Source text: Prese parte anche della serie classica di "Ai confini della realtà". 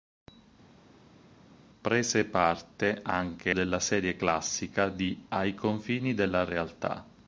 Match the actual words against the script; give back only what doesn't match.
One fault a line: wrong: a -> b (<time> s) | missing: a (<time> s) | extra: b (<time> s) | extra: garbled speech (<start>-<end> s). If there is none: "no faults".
no faults